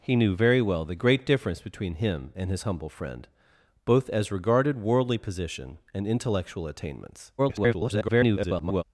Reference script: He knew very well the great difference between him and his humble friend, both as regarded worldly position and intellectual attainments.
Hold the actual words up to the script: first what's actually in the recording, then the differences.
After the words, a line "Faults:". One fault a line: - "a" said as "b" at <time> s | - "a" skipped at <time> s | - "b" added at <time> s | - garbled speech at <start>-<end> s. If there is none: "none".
He knew very well the great difference between him and his humble friend, both as regarded worldly position and intellectual attainments. [garbled]
Faults:
- garbled speech at 7.4-8.8 s